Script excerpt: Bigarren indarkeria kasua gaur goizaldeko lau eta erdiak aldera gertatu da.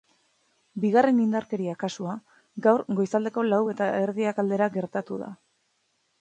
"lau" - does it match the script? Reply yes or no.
yes